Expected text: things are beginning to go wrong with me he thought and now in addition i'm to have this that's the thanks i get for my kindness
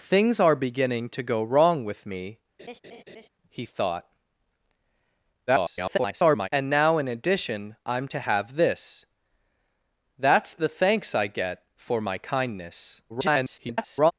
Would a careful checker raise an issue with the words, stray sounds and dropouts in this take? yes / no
yes